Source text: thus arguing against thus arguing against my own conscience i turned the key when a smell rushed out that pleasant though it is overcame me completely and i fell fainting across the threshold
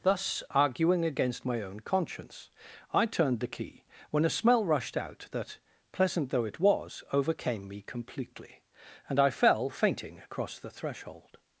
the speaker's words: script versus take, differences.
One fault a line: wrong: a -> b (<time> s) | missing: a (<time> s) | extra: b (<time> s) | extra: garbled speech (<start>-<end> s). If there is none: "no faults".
missing: thus arguing against (1.4 s)
wrong: is -> was (6.6 s)